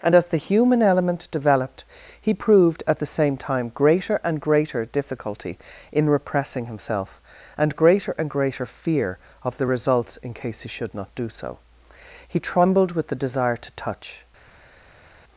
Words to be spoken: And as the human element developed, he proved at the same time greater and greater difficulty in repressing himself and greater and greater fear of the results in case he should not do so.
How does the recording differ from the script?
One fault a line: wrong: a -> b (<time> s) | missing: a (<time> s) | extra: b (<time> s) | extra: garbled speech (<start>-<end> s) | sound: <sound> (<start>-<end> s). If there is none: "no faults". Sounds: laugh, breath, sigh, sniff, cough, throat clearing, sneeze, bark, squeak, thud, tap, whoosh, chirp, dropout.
extra: He trembled with the desire to touch (12.3 s)